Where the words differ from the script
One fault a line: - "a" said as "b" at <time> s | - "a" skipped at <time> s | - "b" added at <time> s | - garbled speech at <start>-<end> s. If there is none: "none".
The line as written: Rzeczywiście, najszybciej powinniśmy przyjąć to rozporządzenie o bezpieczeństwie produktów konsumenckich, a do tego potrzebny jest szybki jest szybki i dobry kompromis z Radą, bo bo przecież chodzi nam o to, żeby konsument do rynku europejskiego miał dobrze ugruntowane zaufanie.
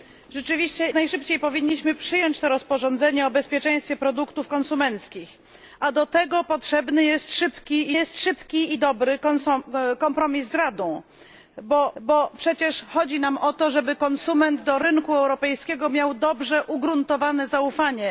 none